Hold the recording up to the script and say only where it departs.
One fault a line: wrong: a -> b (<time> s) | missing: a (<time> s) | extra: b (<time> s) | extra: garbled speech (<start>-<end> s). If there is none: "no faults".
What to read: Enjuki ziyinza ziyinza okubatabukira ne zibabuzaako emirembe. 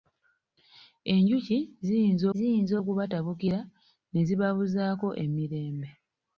no faults